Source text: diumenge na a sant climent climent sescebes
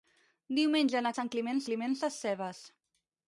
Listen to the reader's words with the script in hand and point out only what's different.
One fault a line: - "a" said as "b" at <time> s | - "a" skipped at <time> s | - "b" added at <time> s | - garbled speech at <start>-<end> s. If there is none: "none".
none